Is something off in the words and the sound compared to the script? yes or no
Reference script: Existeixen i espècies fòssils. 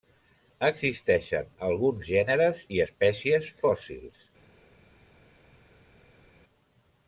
yes